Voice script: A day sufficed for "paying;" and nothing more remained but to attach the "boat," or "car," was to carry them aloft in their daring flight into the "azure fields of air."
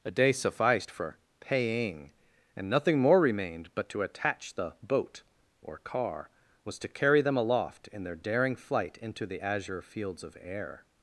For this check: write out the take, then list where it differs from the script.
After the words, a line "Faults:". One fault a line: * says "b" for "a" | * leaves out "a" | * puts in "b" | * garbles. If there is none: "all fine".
A day sufficed for "paying;" and nothing more remained but to attach the "boat," or "car," was to carry them aloft in their daring flight into the "azure fields of air."
Faults:
all fine